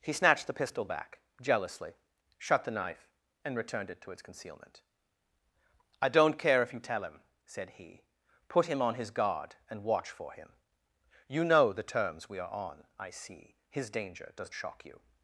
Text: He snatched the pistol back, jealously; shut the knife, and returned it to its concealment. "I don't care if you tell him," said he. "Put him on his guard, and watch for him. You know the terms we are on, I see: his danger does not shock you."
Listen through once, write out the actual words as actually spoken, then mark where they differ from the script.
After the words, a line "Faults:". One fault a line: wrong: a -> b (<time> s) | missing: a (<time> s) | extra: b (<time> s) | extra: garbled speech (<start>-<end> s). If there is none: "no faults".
He snatched the pistol back, jealously; shut the knife, and returned it to its concealment. "I don't care if you tell him," said he. "Put him on his guard, and watch for him. You know the terms we are on, I see: his danger does shock you."
Faults:
missing: not (14.5 s)